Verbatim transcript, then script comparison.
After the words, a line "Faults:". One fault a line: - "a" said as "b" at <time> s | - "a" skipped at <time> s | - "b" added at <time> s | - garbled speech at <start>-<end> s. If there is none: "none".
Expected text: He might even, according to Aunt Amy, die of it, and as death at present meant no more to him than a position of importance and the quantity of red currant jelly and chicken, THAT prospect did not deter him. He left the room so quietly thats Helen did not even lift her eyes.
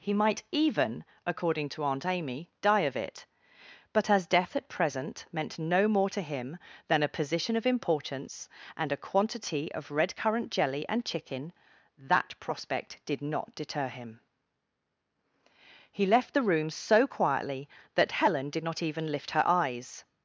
He might even, according to Aunt Amy, die of it, but as death at present meant no more to him than a position of importance and a quantity of red currant jelly and chicken, THAT prospect did not deter him. He left the room so quietly that Helen did not even lift her eyes.
Faults:
- "and" said as "but" at 3.9 s
- "the" said as "a" at 8.9 s
- "thats" said as "that" at 18.0 s